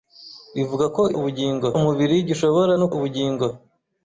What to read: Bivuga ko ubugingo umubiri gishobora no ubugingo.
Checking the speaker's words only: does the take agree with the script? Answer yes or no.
yes